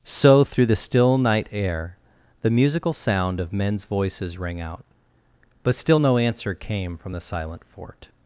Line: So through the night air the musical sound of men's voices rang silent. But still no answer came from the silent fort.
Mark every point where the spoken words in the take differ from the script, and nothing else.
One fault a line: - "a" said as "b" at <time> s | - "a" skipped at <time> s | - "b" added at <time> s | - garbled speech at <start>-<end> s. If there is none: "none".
- "still" added at 0.8 s
- "silent" said as "out" at 4.6 s